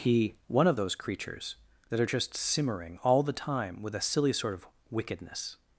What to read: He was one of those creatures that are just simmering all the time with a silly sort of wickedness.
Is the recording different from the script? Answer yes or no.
yes